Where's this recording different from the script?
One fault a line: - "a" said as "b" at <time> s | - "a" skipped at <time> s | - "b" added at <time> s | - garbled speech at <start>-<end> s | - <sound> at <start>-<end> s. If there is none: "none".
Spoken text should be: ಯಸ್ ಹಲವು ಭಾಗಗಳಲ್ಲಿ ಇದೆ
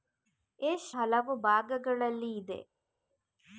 none